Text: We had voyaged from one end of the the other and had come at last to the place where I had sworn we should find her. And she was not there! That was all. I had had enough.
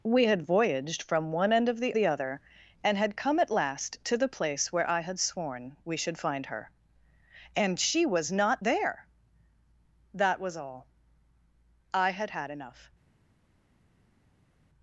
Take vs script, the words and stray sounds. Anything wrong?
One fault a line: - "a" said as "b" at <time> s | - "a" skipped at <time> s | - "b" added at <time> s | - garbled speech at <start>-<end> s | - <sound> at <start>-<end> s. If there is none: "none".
none